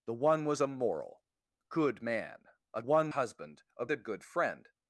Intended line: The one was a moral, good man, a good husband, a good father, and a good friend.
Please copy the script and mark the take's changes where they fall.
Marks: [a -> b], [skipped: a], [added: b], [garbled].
The one was a moral, good man, a [good -> one] husband, a [skipped: good father, and] a good friend.